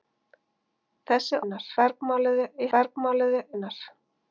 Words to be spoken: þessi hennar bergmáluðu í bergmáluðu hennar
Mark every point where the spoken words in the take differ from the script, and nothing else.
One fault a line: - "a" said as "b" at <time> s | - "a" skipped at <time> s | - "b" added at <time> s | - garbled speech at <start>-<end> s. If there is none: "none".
none